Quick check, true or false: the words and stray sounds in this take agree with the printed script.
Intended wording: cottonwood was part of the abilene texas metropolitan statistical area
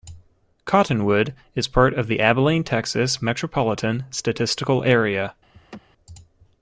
false